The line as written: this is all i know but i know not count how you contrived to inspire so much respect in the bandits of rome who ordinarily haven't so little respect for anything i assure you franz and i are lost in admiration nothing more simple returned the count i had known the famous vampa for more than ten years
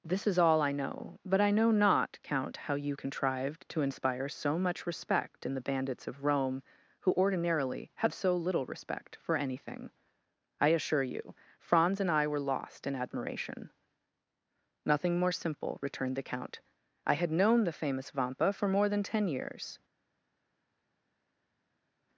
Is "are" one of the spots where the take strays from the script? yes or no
yes